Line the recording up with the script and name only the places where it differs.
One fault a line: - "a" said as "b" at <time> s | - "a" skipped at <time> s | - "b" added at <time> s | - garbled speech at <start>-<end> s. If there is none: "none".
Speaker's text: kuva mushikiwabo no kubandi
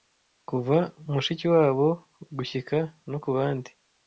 - "gushyika" added at 2.4 s